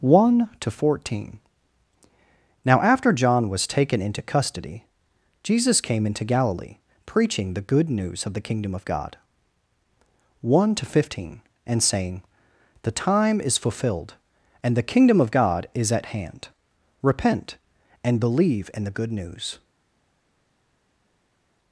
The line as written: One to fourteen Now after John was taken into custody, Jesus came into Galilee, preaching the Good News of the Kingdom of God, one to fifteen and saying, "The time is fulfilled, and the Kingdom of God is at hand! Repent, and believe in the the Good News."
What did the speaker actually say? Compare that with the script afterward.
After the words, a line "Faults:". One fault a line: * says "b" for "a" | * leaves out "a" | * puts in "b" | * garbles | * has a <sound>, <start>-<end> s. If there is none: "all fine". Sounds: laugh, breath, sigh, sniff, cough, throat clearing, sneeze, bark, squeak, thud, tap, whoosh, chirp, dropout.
One to fourteen Now after John was taken into custody, Jesus came into Galilee, preaching the Good News of the Kingdom of God, one to fifteen and saying, "The time is fulfilled, and the Kingdom of God is at hand! Repent, and believe in the Good News."
Faults:
* leaves out "the"